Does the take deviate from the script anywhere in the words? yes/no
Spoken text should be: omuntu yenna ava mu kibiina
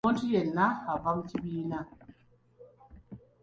no